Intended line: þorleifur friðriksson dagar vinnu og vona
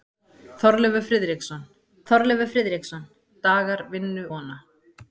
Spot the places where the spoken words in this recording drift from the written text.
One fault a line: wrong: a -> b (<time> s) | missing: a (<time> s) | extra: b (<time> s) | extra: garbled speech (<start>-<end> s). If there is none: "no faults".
extra: þorleifur friðriksson (2.1 s)
missing: og (4.3 s)